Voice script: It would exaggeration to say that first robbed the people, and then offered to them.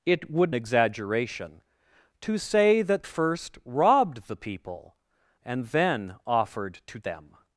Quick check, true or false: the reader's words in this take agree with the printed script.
true